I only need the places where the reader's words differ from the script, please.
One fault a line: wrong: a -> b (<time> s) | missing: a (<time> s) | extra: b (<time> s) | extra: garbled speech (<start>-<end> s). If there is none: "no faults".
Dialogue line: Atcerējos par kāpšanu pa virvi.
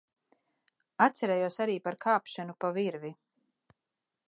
extra: arī (1.6 s)